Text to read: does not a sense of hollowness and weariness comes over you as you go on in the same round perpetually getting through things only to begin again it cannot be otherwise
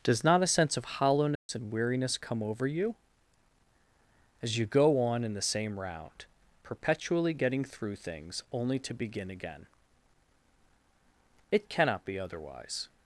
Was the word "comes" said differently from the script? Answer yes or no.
yes